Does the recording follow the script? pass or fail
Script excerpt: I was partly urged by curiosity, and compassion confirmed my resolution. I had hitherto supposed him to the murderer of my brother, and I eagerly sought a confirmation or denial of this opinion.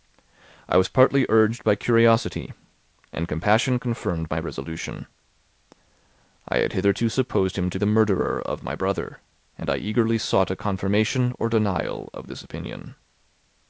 pass